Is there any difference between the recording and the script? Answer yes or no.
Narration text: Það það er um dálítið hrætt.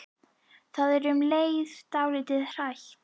yes